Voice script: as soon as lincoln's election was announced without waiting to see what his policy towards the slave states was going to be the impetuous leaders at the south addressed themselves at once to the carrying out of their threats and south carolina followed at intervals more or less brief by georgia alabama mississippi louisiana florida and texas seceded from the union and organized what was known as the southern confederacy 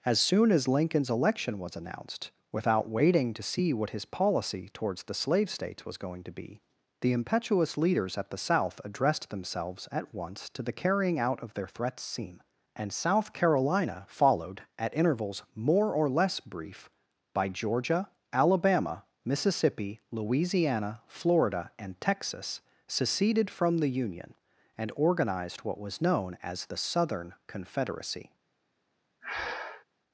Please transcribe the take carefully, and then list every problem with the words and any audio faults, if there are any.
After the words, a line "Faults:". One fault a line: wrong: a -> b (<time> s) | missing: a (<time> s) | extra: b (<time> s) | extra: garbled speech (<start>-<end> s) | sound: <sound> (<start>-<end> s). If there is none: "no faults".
as soon as lincoln's election was announced without waiting to see what his policy towards the slave states was going to be the impetuous leaders at the south addressed themselves at once to the carrying out of their threats seen and south carolina followed at intervals more or less brief by georgia alabama mississippi louisiana florida and texas seceded from the union and organized what was known as the southern confederacy
Faults:
extra: seen (12.0 s)
sound: breath (29.2-29.8 s)